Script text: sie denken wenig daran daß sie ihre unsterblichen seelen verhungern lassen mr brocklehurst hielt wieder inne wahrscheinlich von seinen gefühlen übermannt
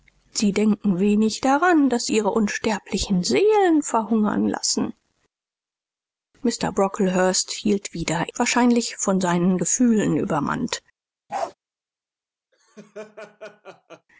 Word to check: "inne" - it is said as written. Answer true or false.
false